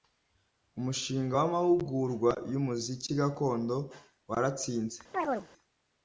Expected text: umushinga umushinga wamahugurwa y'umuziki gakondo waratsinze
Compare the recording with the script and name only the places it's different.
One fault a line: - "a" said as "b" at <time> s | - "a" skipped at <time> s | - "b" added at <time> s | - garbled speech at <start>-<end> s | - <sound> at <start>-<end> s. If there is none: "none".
- "umushinga" skipped at 1.3 s
- chirp at 5.1-5.5 s